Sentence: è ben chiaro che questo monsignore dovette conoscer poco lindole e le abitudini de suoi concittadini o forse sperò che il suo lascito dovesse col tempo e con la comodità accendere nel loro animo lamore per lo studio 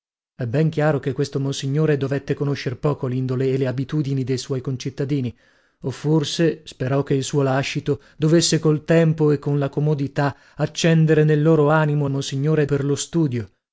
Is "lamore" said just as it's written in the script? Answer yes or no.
no